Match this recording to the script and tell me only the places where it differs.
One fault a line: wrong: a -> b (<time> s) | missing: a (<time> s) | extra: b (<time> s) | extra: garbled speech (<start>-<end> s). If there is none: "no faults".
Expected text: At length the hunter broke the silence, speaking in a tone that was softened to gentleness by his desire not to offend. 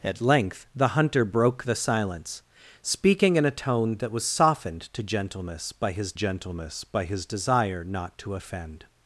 extra: gentleness by his (6.1 s)